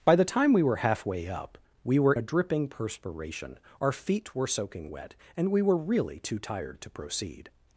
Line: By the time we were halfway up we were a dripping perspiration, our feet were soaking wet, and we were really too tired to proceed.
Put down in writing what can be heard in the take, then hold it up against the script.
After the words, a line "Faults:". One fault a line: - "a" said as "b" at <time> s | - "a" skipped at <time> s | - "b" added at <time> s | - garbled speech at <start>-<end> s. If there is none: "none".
By the time we were halfway up we were a dripping perspiration, our feet were soaking wet, and we were really too tired to proceed.
Faults:
none